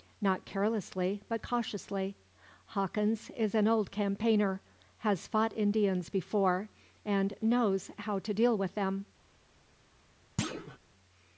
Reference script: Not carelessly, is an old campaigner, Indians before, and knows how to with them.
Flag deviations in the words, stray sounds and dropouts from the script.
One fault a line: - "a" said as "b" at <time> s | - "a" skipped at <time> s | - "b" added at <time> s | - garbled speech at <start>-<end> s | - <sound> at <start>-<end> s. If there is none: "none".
- "but cautiously Hawkins" added at 1.3 s
- "has fought" added at 5.0 s
- "deal" added at 8.3 s
- thud at 10.4-10.8 s